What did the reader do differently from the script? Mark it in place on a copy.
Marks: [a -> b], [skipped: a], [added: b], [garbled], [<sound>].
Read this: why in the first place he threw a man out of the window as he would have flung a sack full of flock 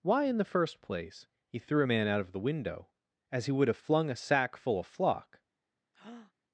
why in the first place he threw a man out of the window as he would have flung a sack full of flock [breath]